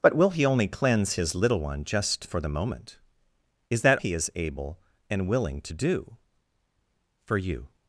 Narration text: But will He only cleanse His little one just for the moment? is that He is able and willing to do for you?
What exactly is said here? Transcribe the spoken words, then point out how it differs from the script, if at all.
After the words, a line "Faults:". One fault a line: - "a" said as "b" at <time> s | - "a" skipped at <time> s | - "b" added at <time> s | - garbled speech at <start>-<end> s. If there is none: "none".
But will He only cleanse His little one just for the moment? is that He is able and willing to do for you?
Faults:
none